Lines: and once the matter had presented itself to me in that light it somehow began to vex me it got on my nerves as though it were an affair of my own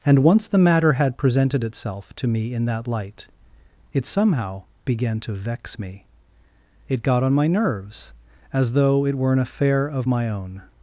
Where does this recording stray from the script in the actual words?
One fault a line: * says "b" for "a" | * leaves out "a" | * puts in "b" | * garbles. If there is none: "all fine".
all fine